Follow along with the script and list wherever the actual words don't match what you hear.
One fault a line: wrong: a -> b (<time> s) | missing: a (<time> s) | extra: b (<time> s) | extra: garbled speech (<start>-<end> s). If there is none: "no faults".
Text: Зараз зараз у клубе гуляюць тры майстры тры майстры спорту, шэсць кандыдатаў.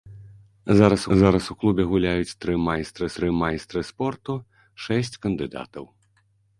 no faults